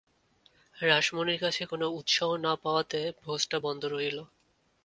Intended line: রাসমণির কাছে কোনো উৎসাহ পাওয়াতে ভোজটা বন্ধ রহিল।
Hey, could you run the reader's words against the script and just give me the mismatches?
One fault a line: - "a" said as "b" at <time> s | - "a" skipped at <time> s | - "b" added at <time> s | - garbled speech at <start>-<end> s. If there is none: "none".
- "না" added at 2.4 s